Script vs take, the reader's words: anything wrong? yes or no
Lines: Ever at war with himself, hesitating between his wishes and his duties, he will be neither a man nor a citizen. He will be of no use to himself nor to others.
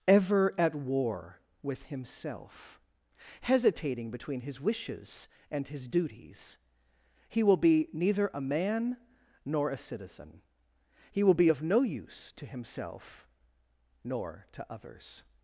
no